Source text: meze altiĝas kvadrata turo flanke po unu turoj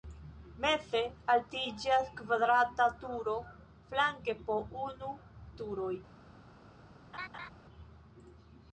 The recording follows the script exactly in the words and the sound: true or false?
false